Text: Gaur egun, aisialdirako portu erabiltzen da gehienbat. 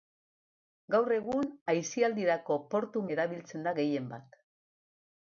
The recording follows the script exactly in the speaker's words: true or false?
true